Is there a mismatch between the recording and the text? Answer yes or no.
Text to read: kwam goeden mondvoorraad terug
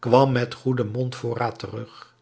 yes